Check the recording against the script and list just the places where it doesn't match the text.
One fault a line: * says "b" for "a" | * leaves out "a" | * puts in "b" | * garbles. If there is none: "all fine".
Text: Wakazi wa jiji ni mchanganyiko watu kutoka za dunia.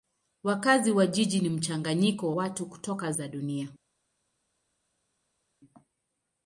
all fine